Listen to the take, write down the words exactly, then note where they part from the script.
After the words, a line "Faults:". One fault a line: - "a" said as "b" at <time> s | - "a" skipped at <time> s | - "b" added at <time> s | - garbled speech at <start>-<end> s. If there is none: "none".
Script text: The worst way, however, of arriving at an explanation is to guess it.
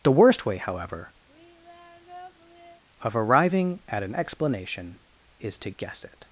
The worst way, however, of arriving at an explanation is to guess it.
Faults:
none